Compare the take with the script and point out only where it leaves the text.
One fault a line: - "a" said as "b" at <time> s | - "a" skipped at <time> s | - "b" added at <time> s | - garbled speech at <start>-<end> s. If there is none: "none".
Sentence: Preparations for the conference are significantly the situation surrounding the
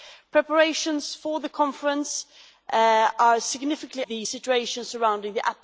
none